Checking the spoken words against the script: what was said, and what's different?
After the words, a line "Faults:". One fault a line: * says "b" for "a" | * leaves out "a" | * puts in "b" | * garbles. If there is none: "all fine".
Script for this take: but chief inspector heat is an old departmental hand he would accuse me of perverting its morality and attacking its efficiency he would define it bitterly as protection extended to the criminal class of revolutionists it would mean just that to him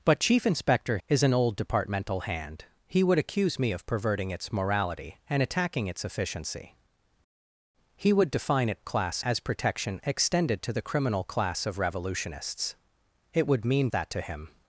but chief inspector is an old departmental hand he would accuse me of perverting its morality and attacking its efficiency he would define it class as protection extended to the criminal class of revolutionists it would mean that to him
Faults:
* leaves out "heat"
* says "class" for "bitterly"
* leaves out "just"